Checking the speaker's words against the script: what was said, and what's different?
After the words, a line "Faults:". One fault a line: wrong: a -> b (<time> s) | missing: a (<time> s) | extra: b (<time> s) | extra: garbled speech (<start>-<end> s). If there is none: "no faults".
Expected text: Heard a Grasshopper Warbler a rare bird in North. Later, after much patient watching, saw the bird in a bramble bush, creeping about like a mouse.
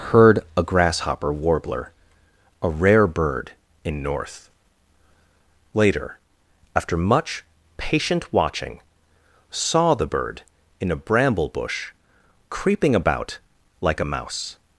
Heard a Grasshopper Warbler a rare bird in North. Later, after much patient watching, saw the bird in a bramble bush, creeping about like a mouse.
Faults:
no faults